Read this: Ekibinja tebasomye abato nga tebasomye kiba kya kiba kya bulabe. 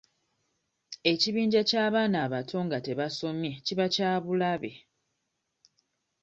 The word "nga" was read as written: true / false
true